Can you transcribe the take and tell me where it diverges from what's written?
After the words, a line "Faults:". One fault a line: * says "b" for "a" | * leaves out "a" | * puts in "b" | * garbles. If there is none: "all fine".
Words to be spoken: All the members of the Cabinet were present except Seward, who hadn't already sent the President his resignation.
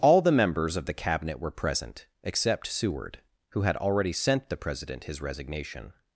All the members of the Cabinet were present except Seward, who had already sent the President his resignation.
Faults:
* says "had" for "hadn't"